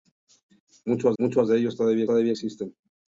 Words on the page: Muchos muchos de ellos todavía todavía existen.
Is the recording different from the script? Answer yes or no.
no